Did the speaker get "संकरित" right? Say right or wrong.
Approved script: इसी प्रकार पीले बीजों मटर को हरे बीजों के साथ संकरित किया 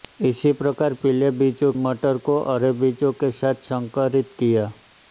right